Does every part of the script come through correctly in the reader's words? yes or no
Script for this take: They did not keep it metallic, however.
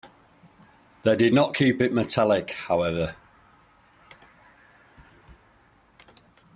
yes